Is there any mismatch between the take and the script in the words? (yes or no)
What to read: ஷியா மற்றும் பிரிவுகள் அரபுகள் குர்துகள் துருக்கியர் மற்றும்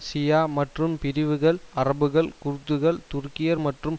no